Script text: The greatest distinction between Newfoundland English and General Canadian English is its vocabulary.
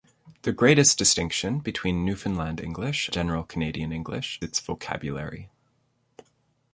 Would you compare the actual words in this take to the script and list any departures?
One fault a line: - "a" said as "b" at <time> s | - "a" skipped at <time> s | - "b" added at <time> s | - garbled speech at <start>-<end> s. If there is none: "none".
- "and" skipped at 3.1 s
- "is" skipped at 4.4 s